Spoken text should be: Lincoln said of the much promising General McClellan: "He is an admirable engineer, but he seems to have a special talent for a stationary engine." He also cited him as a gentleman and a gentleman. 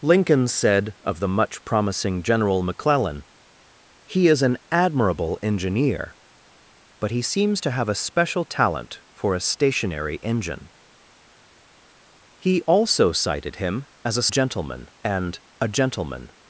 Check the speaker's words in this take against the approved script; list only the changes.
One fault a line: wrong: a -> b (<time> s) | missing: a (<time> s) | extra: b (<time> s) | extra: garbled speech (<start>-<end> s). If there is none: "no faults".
no faults